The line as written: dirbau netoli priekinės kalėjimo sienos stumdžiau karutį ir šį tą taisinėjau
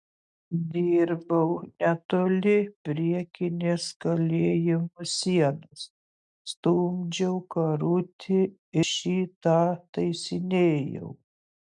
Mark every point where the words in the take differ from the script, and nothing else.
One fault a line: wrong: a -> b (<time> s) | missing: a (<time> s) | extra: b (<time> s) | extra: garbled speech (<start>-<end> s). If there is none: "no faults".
missing: ir (8.4 s)